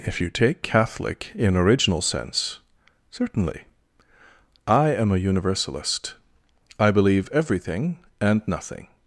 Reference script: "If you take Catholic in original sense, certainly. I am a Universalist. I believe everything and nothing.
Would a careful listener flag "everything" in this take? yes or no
no